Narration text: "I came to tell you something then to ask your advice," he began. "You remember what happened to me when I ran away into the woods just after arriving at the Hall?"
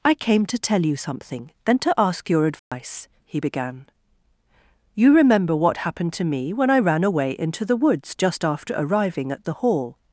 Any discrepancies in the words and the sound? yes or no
yes